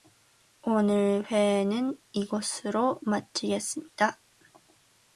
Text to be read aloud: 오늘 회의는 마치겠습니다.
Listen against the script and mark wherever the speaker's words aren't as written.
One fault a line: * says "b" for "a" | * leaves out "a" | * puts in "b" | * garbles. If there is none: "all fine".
* puts in "이것으로"